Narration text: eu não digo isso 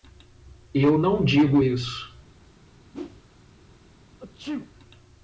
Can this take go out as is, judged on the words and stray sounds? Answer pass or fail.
fail